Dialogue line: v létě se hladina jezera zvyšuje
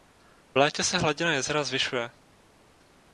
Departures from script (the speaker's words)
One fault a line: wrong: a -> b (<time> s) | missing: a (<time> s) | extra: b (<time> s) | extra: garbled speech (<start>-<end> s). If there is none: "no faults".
no faults